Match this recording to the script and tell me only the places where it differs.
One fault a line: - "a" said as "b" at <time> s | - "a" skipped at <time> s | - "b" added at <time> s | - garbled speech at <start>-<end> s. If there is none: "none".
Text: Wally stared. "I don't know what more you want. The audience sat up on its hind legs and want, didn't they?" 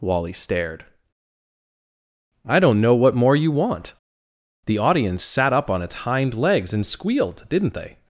- "want" said as "squealed" at 6.9 s